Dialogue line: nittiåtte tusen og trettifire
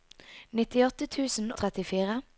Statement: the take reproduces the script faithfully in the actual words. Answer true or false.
true